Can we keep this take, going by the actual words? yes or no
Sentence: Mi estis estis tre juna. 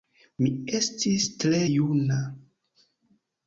no